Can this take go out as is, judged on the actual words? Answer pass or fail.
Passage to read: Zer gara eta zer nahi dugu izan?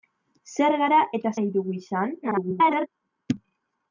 fail